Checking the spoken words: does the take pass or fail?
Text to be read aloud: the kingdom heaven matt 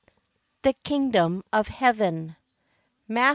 fail